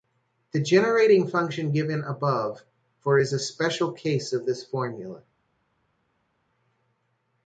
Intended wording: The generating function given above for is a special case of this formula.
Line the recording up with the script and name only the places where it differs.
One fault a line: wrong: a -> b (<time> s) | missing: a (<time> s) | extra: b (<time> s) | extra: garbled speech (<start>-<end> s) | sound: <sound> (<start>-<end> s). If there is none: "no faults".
no faults